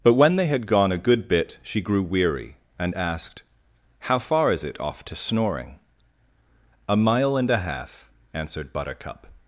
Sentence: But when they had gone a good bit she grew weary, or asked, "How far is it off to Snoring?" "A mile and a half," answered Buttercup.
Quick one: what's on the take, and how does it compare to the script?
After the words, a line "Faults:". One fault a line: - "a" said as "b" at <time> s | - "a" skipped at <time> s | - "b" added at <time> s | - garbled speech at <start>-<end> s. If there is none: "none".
But when they had gone a good bit she grew weary, and asked, "How far is it off to Snoring?" "A mile and a half," answered Buttercup.
Faults:
- "or" said as "and" at 2.8 s